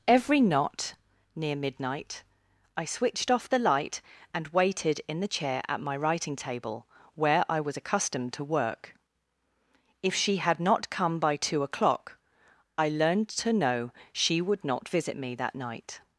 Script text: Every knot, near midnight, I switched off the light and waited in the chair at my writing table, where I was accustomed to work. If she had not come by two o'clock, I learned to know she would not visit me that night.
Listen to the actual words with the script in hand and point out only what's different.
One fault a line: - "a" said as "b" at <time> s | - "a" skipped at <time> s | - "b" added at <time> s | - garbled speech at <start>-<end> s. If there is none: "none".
none